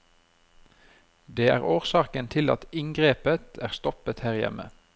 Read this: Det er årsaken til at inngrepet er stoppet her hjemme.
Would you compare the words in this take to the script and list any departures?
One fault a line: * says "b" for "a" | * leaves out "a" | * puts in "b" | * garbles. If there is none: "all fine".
all fine